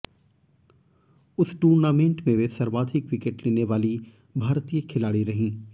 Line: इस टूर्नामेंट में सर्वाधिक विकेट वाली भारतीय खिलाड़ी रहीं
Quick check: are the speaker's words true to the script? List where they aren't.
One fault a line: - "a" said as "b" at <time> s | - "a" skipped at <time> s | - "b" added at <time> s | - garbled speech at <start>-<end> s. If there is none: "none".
- "इस" said as "उस" at 1.4 s
- "वे" added at 2.3 s
- "लेने" added at 3.5 s